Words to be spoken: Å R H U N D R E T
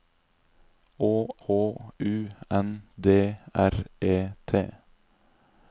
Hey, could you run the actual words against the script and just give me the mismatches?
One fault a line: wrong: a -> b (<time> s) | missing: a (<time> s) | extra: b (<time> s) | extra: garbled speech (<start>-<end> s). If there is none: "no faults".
missing: R (1.1 s)